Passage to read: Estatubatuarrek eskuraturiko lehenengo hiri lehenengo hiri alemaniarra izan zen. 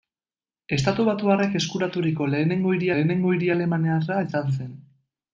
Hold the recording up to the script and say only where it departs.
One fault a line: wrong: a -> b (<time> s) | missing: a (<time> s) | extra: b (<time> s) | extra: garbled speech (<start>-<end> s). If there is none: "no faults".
no faults